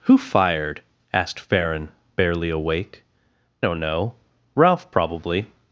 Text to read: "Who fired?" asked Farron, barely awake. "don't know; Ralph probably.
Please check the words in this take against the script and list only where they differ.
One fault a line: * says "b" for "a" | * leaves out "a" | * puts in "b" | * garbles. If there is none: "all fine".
all fine